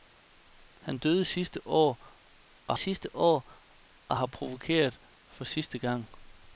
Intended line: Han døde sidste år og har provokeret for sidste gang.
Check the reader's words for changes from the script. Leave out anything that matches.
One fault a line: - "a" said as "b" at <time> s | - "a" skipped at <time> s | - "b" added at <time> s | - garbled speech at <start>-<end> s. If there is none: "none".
- "sidste år og" added at 2.8 s